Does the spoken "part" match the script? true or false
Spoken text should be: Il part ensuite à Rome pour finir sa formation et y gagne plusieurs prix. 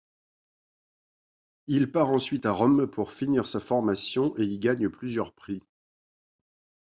true